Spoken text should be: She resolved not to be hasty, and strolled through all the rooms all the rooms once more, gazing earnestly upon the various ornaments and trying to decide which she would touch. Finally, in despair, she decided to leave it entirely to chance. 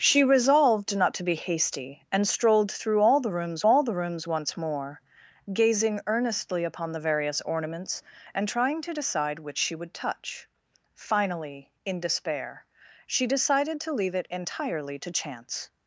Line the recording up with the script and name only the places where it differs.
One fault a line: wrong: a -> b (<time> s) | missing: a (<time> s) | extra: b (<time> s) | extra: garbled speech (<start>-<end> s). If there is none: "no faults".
no faults